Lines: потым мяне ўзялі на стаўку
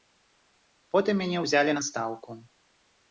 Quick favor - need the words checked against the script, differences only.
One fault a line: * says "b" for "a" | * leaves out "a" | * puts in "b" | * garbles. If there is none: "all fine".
all fine